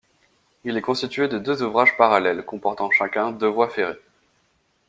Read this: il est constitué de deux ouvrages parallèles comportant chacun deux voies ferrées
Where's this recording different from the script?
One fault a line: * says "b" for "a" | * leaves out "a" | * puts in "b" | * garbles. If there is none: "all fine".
all fine